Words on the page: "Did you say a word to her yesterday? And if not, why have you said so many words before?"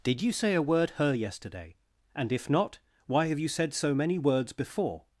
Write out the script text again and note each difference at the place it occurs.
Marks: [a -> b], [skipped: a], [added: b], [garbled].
"Did you say a word [skipped: to] her yesterday? And if not, why have you said so many words before?"